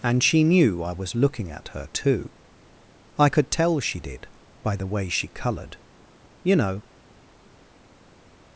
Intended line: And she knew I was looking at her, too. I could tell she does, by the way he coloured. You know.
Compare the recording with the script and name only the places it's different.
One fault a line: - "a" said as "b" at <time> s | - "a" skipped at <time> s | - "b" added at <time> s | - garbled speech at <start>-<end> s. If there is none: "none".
- "does" said as "did" at 4.0 s
- "he" said as "she" at 5.1 s